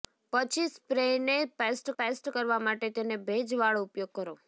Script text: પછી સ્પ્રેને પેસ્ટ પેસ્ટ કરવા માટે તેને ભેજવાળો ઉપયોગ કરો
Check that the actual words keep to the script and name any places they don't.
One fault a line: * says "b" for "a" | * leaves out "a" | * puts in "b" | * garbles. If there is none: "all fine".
all fine